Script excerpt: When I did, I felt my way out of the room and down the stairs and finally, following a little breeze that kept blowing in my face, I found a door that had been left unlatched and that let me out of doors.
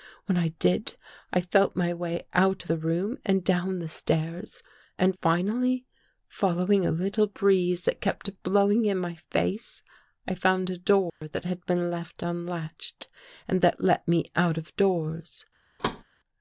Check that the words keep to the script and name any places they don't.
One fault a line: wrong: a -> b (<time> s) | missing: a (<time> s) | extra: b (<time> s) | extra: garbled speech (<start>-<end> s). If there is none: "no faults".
missing: of (2.6 s)